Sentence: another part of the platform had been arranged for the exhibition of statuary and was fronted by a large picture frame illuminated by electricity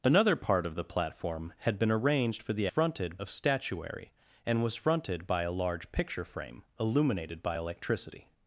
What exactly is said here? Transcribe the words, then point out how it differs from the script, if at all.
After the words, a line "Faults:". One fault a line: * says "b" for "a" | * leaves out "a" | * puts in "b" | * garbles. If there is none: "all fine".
another part of the platform had been arranged for the fronted of statuary and was fronted by a large picture frame illuminated by electricity
Faults:
* says "fronted" for "exhibition"